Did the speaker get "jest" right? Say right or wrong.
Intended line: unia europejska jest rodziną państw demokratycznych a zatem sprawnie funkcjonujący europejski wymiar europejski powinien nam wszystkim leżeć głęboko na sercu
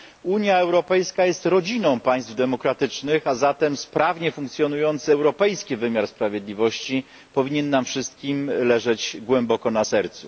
right